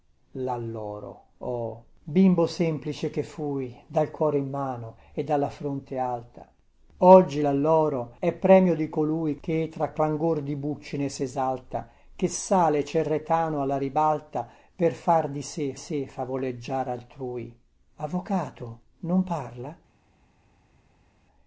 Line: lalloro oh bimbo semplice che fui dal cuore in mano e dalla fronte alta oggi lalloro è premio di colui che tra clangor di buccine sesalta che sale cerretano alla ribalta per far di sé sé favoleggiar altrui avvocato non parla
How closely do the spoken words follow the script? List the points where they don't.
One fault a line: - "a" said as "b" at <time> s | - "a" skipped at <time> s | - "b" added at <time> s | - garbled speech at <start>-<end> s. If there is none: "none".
none